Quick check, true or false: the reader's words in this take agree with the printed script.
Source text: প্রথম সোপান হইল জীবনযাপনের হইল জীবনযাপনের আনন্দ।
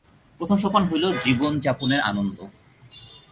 false